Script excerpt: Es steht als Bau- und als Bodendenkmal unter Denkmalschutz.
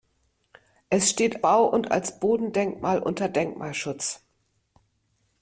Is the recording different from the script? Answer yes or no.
yes